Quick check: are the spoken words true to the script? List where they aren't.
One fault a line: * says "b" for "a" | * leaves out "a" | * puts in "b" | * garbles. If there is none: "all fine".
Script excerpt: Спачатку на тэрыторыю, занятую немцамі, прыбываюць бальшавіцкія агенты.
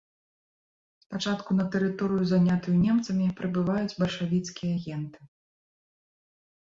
all fine